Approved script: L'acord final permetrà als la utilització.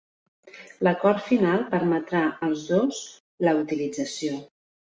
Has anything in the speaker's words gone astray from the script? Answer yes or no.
yes